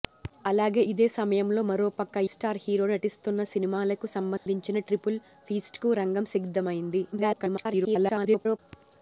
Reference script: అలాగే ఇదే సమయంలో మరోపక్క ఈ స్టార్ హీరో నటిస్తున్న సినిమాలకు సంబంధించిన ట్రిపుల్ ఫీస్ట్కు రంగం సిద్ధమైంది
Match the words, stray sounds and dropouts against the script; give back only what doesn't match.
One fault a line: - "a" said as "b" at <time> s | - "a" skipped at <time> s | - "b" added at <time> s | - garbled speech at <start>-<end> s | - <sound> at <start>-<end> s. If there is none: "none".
- "ఈ" skipped at 2.2 s
- dropout at 4.4-4.5 s
- garbled speech at 7.1-8.6 s